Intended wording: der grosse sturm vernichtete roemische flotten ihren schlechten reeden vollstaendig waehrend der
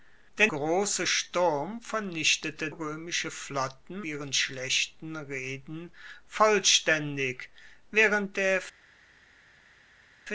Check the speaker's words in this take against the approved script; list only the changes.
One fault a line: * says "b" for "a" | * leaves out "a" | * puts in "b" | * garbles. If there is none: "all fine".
all fine